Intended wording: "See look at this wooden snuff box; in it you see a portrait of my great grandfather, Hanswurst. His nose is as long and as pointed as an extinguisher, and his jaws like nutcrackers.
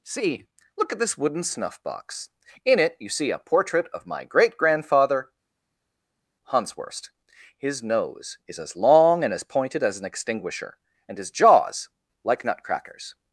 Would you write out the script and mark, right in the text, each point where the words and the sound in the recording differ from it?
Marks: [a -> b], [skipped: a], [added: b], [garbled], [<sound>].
"See look at this wooden snuff box; in it you see a portrait of my great grandfather, Hanswurst. His nose is as long and as pointed as an extinguisher, and his jaws like nutcrackers.